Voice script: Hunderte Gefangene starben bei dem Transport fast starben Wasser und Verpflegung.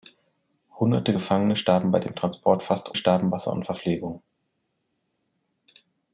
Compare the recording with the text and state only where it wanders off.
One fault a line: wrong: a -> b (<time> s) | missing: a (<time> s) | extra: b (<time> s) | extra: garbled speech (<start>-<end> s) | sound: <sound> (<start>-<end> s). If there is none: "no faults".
no faults